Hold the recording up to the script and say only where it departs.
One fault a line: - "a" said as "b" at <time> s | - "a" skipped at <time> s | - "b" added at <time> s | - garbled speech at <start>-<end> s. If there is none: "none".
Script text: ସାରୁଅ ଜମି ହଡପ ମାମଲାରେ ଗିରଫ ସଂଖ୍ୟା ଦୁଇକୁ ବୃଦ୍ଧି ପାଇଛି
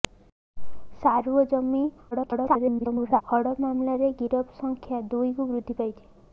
- garbled speech at 2.1-3.2 s